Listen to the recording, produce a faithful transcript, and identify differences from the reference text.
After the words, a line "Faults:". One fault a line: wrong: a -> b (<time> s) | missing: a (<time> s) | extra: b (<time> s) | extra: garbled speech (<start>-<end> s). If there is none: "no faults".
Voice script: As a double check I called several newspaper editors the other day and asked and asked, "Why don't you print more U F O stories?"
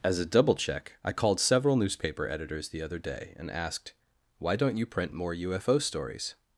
As a double check I called several newspaper editors the other day and asked, "Why don't you print more U F O stories?"
Faults:
missing: and asked (3.9 s)